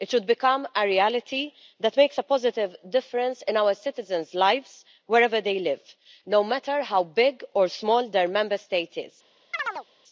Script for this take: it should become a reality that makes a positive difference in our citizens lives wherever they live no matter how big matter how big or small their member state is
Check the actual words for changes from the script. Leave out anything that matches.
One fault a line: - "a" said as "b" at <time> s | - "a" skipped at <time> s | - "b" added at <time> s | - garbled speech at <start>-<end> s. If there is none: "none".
- "matter how big" skipped at 7.4 s